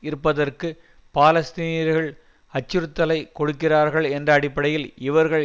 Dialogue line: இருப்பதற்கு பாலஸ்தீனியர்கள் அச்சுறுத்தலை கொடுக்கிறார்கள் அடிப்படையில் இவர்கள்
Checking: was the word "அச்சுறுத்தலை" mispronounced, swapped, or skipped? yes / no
no